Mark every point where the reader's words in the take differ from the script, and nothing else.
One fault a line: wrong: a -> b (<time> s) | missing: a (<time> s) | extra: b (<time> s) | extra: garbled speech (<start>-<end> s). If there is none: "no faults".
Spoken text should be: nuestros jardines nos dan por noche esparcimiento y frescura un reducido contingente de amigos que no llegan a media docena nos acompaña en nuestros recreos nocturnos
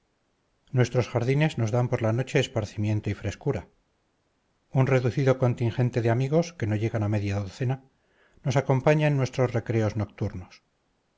extra: la (2.0 s)